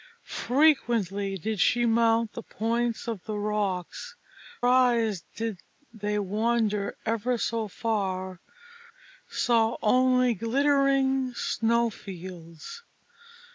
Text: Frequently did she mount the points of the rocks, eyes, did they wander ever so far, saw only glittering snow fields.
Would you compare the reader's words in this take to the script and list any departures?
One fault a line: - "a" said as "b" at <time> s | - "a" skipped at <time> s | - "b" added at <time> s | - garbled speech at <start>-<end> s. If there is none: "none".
none